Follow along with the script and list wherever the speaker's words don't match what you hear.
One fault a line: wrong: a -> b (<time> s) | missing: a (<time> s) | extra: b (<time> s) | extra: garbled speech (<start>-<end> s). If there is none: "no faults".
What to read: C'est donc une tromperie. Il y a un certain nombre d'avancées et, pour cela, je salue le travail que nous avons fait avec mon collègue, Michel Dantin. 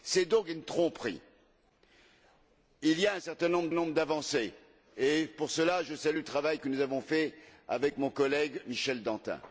extra: nombre (3.7 s)